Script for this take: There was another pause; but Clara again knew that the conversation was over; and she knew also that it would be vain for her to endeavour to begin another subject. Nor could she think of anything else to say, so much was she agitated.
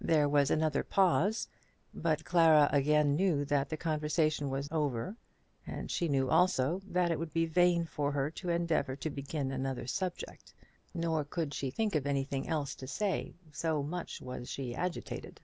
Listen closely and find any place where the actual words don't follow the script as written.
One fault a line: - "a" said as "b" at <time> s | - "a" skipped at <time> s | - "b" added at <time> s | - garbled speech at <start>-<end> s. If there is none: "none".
none